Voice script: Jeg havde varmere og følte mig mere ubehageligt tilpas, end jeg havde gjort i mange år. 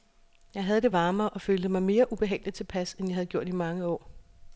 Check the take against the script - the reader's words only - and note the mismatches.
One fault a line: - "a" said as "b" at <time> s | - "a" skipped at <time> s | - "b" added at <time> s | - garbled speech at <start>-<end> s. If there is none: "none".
- "det" added at 0.8 s